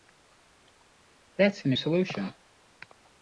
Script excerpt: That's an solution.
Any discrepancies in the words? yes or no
no